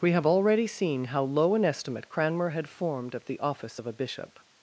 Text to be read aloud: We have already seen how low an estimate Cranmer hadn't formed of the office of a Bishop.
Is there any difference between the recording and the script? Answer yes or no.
yes